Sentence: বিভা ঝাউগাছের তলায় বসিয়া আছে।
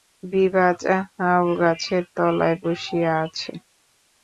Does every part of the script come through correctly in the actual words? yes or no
yes